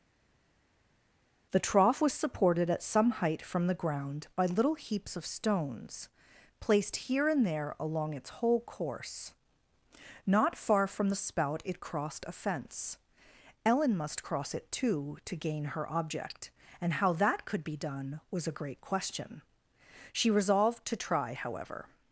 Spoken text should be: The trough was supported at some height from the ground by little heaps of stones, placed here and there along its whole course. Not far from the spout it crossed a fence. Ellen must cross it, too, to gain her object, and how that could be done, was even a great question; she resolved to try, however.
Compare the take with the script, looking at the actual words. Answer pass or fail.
fail